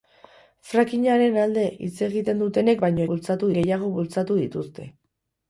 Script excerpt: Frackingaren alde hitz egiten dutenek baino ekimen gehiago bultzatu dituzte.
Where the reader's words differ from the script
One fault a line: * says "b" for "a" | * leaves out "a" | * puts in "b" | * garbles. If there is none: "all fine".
* says "bultzatu" for "ekimen"